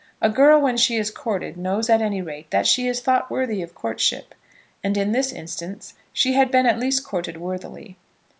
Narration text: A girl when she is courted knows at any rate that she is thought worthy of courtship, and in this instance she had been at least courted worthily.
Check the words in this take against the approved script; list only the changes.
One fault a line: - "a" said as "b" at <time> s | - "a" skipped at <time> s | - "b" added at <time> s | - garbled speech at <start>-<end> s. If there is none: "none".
none